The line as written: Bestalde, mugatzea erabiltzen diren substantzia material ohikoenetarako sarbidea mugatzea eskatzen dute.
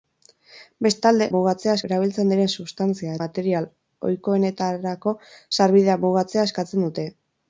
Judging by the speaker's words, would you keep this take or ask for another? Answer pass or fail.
pass